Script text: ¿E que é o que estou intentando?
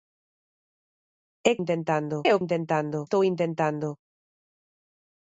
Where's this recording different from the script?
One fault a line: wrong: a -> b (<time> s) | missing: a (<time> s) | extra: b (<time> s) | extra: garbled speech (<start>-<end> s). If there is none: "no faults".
wrong: que -> intentando (1.6 s)
wrong: que -> intentando (2.4 s)